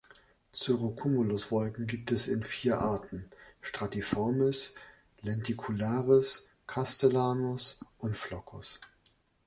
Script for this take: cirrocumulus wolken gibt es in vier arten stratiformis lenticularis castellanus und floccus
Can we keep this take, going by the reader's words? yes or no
yes